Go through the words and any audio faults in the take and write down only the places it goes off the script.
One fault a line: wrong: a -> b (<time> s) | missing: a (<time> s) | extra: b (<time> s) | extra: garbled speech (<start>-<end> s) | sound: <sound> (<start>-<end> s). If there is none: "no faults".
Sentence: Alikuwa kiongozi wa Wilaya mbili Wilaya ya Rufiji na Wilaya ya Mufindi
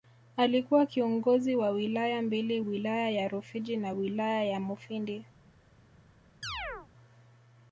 sound: chirp (6.4-6.9 s)